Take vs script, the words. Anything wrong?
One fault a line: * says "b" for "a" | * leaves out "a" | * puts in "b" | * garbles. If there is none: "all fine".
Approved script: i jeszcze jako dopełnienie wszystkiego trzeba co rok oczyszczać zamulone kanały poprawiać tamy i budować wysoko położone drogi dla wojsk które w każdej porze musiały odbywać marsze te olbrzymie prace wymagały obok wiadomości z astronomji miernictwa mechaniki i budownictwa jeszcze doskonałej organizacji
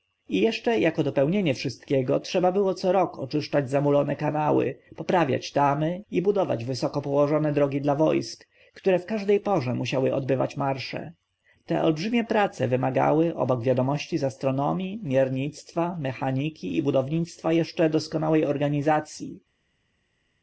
* puts in "było"